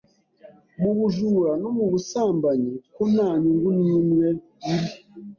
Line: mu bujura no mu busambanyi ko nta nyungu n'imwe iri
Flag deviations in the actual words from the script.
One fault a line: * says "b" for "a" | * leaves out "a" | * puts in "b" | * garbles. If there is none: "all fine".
all fine